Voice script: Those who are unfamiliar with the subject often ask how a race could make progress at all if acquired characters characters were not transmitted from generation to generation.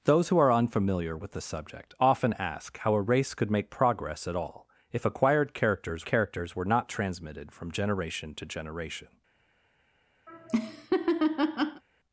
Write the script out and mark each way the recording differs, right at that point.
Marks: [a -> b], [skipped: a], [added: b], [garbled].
Those who are unfamiliar with the subject often ask how a race could make progress at all if acquired characters characters were not transmitted from generation to generation.